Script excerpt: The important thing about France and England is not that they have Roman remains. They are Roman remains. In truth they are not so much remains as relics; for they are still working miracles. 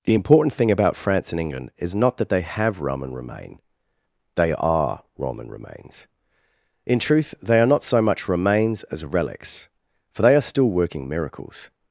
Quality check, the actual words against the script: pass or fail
fail